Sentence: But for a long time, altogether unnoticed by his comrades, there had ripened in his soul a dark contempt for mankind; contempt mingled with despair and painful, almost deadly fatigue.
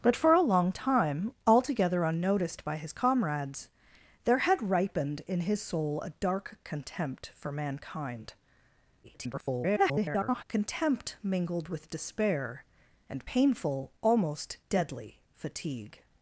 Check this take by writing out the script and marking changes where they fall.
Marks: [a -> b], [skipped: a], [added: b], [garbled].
But for a long time, altogether unnoticed by his comrades, there had ripened in his soul a dark contempt for mankind; [garbled] contempt mingled with despair and painful, almost deadly fatigue.